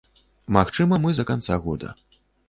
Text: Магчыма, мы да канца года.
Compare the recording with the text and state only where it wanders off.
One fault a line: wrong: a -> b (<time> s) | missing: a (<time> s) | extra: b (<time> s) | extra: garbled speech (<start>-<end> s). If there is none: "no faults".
no faults